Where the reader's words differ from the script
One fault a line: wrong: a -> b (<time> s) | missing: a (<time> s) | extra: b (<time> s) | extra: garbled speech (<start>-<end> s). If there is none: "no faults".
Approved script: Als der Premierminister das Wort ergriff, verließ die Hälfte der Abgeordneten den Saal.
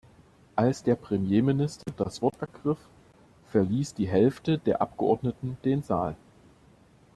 no faults